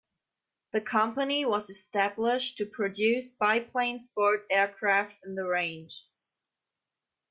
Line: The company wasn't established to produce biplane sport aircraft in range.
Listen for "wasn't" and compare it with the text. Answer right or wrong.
wrong